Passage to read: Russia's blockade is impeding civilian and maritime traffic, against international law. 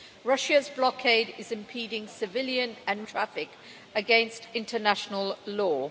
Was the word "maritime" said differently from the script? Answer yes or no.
yes